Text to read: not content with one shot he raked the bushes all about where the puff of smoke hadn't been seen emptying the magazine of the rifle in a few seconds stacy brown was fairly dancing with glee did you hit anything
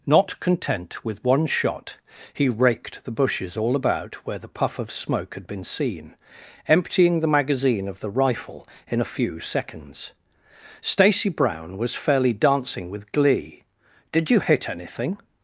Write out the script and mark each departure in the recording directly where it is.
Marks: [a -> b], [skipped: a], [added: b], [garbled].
not content with one shot he raked the bushes all about where the puff of smoke [hadn't -> had] been seen emptying the magazine of the rifle in a few seconds stacy brown was fairly dancing with glee did you hit anything